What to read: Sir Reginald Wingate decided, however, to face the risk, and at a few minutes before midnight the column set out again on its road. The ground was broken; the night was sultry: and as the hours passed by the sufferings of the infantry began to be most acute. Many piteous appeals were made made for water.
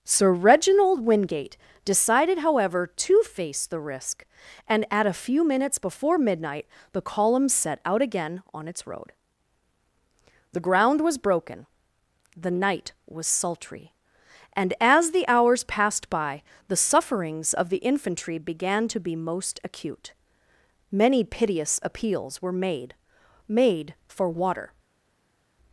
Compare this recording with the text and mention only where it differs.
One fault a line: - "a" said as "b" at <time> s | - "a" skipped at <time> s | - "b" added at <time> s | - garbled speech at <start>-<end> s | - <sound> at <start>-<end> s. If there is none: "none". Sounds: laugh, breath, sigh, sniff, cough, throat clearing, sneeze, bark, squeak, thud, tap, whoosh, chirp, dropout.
none